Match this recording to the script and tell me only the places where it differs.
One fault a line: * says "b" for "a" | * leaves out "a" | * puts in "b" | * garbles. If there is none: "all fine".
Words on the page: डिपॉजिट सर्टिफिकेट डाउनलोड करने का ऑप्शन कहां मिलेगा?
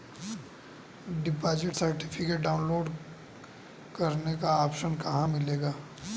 all fine